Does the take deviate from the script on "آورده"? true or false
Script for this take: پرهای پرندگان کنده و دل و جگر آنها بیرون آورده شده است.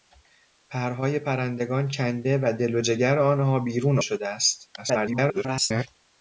true